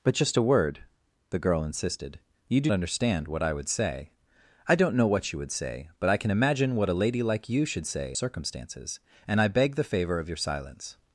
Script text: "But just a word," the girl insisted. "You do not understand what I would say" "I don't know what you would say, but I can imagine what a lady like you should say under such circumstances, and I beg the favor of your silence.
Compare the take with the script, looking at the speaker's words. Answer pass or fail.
fail